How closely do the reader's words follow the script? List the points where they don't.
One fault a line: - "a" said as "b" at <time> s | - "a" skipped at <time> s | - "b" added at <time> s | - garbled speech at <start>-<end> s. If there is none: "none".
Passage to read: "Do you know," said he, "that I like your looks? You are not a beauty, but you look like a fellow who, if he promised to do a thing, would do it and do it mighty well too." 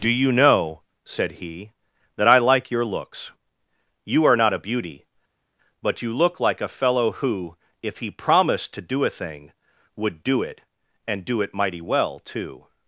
none